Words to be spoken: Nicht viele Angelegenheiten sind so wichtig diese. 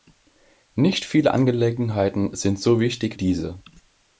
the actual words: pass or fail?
pass